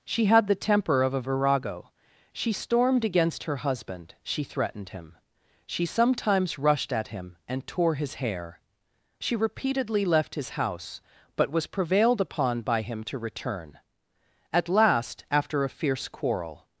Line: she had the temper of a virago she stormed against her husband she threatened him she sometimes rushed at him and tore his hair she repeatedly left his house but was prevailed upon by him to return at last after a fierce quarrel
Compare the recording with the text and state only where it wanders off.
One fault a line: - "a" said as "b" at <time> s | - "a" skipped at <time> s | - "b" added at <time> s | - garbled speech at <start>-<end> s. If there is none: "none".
none